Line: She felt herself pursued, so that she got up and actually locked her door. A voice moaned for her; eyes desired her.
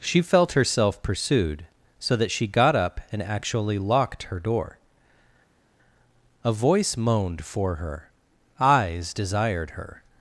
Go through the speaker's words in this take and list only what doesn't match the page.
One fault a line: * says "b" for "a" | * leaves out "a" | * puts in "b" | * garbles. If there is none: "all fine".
all fine